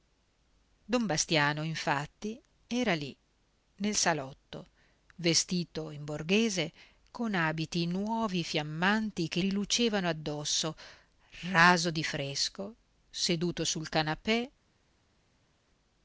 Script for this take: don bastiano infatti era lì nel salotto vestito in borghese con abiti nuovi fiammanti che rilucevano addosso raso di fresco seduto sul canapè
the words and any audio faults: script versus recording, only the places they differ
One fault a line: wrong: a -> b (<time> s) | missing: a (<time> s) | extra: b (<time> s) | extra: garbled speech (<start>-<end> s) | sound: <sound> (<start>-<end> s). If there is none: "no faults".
no faults